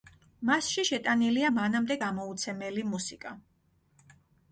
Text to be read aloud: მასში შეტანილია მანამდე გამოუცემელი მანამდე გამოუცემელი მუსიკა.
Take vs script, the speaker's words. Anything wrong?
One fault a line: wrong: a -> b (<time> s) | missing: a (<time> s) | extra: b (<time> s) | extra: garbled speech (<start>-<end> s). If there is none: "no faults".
missing: მანამდე გამოუცემელი (2.9 s)